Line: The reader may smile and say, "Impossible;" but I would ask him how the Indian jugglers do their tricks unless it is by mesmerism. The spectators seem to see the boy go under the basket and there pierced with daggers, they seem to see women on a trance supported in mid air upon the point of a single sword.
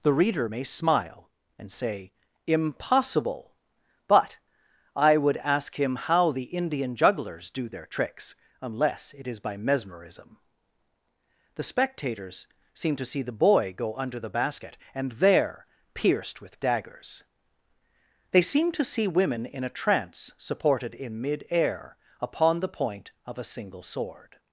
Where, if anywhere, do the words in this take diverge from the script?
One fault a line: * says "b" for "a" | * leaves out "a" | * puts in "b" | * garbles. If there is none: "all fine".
* says "in" for "on"